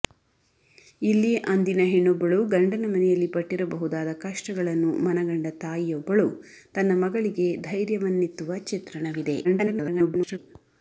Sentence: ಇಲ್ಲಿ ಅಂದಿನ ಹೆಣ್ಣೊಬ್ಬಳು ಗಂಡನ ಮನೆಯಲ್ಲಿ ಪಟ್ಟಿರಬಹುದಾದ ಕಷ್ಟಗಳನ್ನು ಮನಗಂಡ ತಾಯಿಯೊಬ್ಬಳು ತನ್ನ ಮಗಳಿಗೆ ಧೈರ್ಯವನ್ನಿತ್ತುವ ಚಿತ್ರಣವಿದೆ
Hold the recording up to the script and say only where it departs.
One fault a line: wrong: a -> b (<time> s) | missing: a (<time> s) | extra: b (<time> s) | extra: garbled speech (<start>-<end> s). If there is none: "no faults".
extra: garbled speech (9.4-10.4 s)